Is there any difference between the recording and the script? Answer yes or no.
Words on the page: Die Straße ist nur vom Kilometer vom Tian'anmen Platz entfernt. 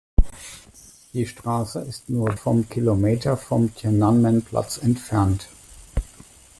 no